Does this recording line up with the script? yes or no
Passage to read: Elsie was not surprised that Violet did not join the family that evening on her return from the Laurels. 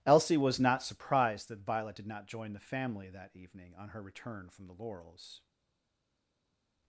yes